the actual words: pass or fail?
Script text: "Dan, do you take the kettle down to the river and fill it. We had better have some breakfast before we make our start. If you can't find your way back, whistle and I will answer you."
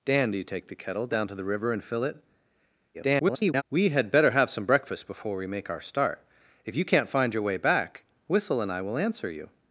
fail